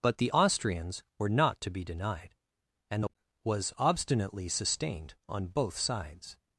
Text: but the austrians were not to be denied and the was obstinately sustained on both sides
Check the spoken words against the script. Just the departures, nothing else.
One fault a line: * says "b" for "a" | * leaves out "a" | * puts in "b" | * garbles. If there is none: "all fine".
all fine